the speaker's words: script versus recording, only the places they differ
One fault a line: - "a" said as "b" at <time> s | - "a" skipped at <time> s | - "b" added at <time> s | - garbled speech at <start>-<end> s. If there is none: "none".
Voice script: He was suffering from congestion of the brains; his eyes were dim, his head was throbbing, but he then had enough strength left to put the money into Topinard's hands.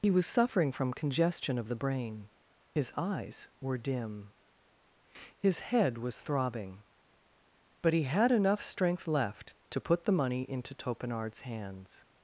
- "brains" said as "brain" at 1.8 s
- "then" skipped at 8.0 s